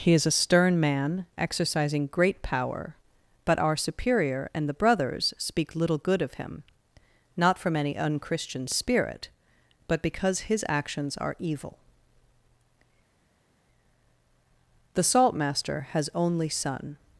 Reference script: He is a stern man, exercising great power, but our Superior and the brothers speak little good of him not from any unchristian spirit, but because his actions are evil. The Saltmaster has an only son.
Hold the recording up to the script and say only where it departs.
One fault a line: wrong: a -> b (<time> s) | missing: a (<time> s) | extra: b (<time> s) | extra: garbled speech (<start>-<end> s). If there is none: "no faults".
missing: an (16.1 s)